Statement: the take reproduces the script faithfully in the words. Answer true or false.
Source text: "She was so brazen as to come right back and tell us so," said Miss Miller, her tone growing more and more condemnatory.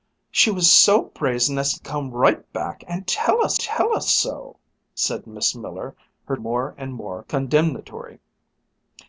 false